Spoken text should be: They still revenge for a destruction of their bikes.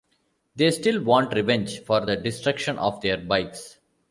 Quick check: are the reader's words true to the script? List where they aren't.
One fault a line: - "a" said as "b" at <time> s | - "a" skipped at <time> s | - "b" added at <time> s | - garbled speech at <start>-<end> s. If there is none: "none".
- "want" added at 1.0 s
- "a" said as "the" at 2.0 s